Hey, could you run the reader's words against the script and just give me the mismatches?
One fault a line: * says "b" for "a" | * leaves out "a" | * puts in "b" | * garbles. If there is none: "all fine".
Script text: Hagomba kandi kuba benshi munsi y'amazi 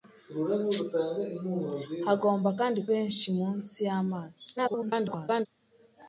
* leaves out "kuba"
* garbles